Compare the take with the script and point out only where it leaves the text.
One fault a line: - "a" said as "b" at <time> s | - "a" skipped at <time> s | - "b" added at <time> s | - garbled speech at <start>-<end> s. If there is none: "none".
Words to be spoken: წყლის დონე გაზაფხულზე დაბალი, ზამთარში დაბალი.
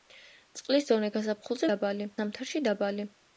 none